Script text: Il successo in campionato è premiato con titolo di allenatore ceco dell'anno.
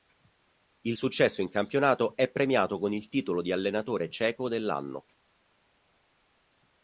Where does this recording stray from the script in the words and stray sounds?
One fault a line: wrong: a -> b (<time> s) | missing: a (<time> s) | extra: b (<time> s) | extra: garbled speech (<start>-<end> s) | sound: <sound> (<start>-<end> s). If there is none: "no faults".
extra: il (2.9 s)